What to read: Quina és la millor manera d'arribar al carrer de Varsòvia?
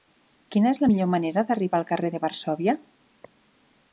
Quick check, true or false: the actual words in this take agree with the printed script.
true